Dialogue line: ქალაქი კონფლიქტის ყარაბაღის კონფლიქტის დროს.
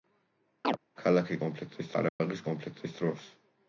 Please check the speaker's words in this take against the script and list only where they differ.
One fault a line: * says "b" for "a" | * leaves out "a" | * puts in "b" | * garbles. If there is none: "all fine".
all fine